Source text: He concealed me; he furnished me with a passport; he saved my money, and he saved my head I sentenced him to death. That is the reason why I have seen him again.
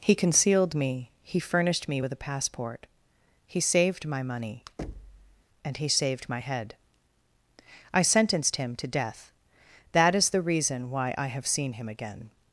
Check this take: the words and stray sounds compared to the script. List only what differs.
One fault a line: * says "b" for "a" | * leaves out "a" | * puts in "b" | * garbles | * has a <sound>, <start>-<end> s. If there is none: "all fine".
* has a thud, 4.8-5.4 s